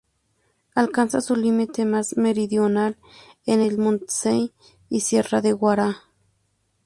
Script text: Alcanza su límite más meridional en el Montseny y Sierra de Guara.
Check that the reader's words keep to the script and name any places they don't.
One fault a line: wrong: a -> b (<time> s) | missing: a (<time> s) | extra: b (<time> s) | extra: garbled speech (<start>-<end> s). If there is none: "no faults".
no faults